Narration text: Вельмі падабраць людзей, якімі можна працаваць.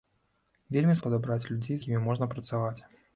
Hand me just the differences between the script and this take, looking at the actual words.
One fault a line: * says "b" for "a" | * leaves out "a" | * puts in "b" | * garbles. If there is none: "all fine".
all fine